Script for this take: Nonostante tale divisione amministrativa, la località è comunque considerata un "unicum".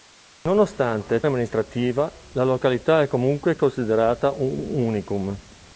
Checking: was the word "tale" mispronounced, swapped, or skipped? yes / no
yes